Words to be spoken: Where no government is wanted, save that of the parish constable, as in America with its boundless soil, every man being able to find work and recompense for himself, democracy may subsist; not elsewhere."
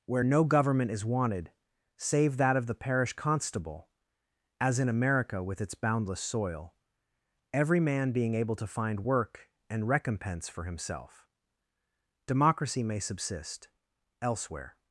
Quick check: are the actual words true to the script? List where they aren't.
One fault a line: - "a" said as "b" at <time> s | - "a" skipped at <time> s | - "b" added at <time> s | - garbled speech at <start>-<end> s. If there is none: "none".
- "not" skipped at 13.7 s